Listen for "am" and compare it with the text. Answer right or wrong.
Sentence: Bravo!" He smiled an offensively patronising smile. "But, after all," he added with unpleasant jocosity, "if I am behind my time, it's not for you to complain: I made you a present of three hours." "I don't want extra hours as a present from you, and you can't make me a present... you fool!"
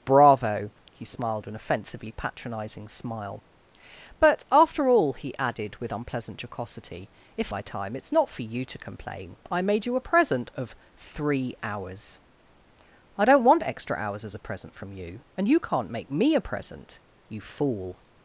wrong